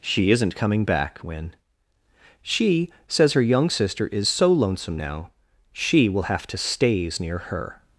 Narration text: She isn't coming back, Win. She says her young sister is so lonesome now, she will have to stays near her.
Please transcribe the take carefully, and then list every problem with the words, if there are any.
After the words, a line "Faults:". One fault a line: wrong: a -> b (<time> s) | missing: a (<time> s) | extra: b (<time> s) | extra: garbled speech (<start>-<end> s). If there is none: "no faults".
She isn't coming back, Win. She says her young sister is so lonesome now, she will have to stays near her.
Faults:
no faults